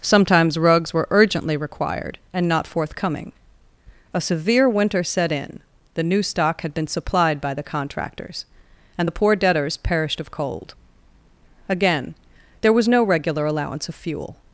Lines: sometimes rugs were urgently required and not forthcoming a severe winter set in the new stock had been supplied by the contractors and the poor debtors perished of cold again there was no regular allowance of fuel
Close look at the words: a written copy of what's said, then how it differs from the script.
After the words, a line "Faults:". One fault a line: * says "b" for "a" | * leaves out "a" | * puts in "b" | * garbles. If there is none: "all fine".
sometimes rugs were urgently required and not forthcoming a severe winter set in the new stock had been supplied by the contractors and the poor debtors perished of cold again there was no regular allowance of fuel
Faults:
all fine